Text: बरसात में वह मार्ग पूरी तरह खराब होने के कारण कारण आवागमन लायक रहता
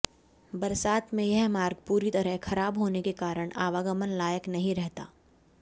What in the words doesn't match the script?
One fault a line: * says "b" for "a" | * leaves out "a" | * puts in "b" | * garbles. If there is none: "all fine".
* says "यह" for "वह"
* leaves out "कारण"
* puts in "नहीं"